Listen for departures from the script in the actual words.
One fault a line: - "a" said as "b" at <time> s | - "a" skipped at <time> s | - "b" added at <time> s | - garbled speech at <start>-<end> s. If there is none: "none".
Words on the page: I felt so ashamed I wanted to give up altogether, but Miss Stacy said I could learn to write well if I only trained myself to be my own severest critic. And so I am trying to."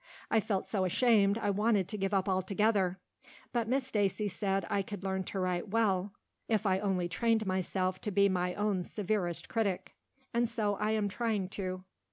none